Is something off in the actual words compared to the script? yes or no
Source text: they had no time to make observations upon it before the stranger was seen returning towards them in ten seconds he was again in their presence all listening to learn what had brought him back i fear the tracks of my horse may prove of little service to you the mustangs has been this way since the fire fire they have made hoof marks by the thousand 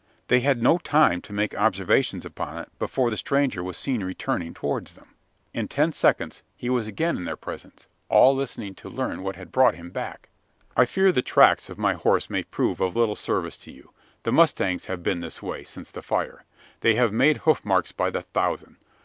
yes